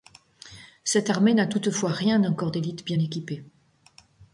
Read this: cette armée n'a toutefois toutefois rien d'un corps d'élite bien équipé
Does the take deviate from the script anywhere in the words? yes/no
yes